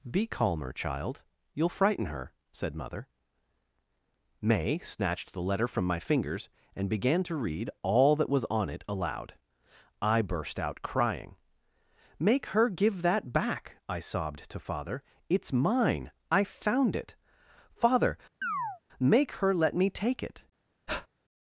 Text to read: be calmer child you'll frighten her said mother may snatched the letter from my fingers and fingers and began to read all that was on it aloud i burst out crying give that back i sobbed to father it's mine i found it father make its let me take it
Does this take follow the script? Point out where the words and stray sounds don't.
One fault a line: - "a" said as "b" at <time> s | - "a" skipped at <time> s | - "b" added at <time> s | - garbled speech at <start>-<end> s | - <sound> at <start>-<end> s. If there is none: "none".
- "fingers and" skipped at 6.9 s
- "make her" added at 12.2 s
- chirp at 18.4-18.8 s
- "its" said as "her" at 19.4 s
- breath at 20.9-21.1 s